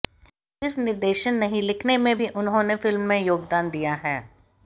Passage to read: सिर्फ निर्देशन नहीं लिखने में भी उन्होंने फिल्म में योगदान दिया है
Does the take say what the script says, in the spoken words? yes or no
yes